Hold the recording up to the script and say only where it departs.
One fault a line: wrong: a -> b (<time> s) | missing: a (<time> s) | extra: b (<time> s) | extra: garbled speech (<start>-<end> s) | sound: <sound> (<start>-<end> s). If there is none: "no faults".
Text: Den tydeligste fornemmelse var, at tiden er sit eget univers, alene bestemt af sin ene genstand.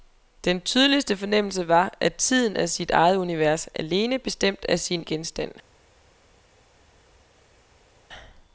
missing: ene (5.0 s)